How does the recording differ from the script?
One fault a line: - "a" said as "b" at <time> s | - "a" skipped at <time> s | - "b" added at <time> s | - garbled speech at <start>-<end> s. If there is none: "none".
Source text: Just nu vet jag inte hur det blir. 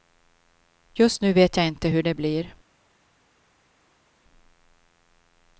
none